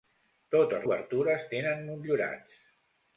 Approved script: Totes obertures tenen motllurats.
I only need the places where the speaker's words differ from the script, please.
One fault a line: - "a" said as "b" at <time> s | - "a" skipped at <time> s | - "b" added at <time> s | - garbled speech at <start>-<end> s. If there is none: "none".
none